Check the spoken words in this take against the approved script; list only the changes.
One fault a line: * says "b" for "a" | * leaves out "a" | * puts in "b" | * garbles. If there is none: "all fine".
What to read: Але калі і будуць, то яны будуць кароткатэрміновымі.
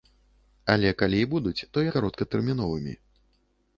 * leaves out "яны будуць"